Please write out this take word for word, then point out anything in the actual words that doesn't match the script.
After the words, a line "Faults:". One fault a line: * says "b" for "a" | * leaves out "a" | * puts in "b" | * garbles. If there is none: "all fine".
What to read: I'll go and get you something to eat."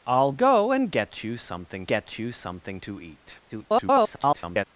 I'll go and get you something get you something to eat." [garbled]
Faults:
* puts in "get you something"
* garbles